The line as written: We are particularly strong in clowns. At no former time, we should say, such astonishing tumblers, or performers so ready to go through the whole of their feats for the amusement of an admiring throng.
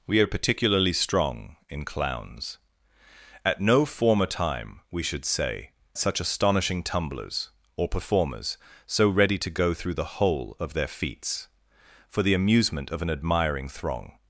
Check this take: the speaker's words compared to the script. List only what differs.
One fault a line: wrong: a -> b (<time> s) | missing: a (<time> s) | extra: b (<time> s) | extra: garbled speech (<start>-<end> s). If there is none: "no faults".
no faults